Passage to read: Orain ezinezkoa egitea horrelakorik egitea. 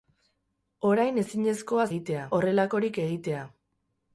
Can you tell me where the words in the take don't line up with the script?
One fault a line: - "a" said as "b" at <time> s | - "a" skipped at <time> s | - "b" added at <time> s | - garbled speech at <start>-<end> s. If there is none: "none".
none